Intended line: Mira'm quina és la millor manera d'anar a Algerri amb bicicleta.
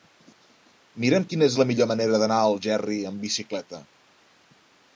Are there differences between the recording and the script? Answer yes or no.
no